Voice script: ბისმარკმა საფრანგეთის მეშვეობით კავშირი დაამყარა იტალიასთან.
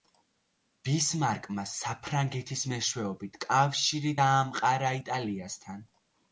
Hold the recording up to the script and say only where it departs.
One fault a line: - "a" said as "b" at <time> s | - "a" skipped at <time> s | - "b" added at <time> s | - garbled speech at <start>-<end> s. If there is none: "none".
none